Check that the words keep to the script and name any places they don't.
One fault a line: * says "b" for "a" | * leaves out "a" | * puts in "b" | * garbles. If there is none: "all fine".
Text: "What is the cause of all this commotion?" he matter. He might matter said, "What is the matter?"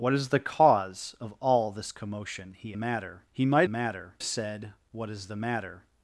all fine